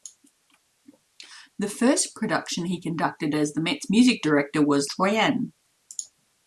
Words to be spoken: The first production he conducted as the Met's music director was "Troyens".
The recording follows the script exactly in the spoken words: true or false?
true